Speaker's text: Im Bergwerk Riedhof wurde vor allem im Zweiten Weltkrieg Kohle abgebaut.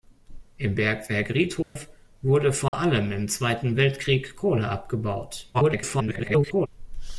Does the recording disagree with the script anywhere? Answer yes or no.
yes